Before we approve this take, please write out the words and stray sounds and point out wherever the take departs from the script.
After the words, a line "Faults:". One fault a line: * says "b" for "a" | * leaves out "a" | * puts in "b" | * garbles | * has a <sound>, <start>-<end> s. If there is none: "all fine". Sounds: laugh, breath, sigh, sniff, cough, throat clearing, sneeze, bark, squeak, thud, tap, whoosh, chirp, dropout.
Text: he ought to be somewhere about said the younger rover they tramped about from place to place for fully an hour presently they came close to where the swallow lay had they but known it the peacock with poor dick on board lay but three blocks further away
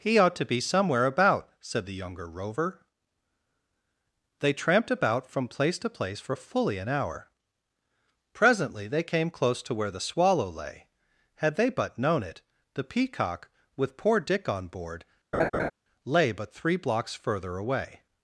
he ought to be somewhere about said the younger rover they tramped about from place to place for fully an hour presently they came close to where the swallow lay had they but known it the peacock with poor dick on board lay but three blocks further away
Faults:
* has a laugh, 15.3-15.7 s